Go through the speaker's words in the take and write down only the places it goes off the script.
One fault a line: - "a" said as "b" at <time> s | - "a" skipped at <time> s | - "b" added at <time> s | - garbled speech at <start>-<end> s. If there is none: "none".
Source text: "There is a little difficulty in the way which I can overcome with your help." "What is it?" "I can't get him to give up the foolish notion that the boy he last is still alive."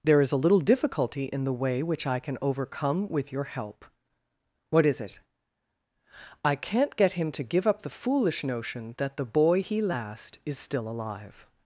none